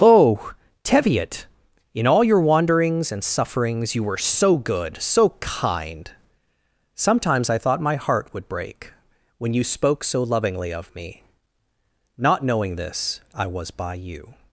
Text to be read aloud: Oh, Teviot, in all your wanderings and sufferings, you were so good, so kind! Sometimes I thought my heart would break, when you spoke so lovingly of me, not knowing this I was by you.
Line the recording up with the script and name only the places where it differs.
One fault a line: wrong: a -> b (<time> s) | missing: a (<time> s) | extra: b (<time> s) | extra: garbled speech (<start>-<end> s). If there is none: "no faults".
no faults